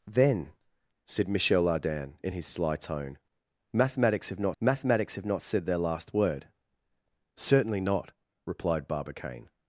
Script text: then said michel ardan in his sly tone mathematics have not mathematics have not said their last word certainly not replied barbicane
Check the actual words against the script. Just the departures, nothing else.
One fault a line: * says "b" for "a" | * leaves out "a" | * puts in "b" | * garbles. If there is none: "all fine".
all fine